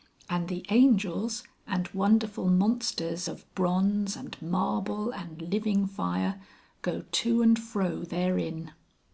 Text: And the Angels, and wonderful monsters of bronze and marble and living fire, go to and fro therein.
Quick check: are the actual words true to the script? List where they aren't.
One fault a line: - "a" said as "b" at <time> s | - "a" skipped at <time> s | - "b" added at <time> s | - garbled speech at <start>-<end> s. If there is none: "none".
none